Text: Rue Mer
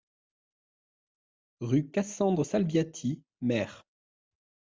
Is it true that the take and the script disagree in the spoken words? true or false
true